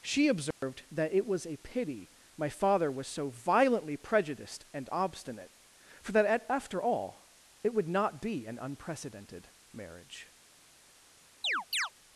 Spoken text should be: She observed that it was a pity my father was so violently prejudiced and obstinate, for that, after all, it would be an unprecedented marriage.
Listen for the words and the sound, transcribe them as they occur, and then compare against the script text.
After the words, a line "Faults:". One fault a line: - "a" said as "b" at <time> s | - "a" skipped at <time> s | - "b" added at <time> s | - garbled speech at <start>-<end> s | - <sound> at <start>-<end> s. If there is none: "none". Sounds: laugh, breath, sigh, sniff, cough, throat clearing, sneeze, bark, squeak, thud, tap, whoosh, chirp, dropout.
She observed that it was a pity my father was so violently prejudiced and obstinate, for that, after all, it would not be an unprecedented marriage.
Faults:
- dropout at 0.5-0.6 s
- "not" added at 7.9 s
- chirp at 11.4-11.9 s